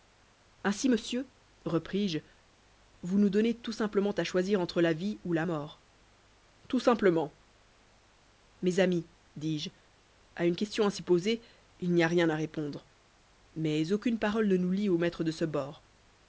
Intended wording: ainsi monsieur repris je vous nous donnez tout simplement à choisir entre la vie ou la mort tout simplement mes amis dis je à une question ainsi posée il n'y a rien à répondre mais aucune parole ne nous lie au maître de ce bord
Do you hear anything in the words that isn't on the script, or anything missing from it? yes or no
no